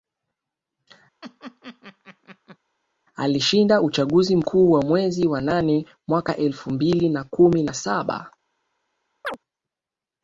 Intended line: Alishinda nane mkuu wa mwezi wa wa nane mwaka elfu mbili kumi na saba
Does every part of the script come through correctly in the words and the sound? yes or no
no